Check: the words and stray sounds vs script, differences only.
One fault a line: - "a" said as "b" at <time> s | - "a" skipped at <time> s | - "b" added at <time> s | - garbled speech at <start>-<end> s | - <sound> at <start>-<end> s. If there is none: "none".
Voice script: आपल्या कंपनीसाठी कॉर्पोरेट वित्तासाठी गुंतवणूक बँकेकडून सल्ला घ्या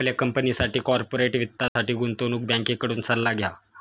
- dropout at 1.7-1.8 s